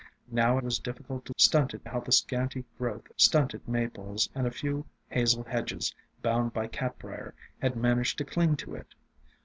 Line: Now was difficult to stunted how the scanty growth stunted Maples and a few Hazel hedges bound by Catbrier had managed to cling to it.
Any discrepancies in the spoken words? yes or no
no